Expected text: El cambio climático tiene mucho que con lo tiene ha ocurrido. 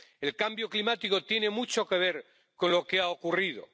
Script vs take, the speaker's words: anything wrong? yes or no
yes